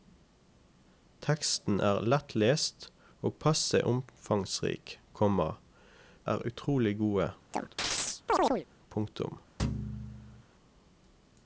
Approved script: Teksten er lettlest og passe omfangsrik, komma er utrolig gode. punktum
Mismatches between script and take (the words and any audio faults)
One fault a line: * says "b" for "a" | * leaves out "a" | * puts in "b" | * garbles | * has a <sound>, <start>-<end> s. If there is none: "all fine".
* has a chirp, 7.5-8.7 s
* has a thud, 9.6-10.4 s